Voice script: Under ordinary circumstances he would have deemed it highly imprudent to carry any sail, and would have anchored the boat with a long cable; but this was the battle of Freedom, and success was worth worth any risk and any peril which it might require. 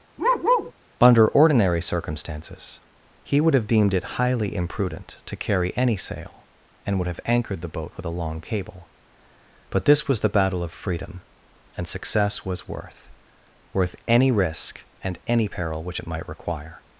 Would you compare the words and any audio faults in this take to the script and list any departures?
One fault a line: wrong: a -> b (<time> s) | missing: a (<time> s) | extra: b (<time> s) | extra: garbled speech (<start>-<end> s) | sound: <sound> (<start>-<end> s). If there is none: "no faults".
sound: bark (0.2-0.7 s)